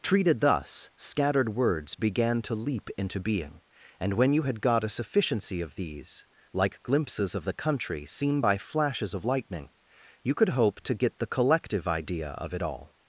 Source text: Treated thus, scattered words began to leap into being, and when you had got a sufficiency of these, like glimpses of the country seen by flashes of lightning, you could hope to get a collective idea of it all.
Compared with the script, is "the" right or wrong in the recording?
right